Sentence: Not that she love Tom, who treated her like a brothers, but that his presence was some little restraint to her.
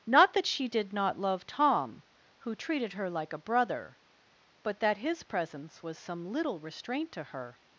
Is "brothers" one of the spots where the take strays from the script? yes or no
yes